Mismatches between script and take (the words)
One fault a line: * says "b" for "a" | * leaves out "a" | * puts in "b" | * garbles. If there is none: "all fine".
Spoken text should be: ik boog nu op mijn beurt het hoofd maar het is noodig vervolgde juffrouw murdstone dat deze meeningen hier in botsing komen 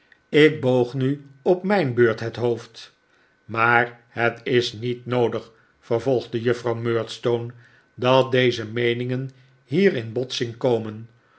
* puts in "niet"